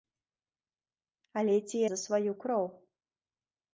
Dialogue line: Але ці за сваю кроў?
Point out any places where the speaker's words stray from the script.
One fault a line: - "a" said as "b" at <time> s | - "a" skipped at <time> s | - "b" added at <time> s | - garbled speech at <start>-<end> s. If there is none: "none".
none